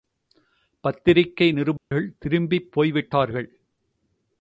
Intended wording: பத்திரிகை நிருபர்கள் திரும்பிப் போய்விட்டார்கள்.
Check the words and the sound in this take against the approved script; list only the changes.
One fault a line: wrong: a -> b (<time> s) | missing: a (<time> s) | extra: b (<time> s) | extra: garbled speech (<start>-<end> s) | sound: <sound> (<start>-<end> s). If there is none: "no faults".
sound: dropout (1.8-1.9 s)